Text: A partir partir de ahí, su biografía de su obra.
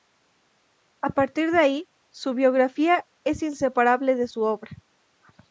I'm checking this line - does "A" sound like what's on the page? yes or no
yes